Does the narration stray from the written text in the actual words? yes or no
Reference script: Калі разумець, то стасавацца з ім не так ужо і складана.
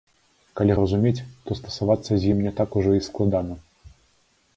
no